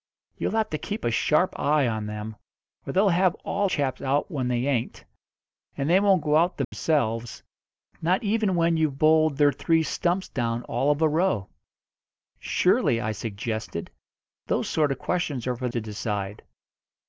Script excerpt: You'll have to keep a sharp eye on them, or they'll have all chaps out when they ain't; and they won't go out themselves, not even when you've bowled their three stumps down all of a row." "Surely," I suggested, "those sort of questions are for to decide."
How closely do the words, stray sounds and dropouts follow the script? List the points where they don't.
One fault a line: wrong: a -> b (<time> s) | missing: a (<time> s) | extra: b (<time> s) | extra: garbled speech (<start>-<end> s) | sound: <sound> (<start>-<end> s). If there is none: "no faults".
sound: dropout (6.6-6.7 s)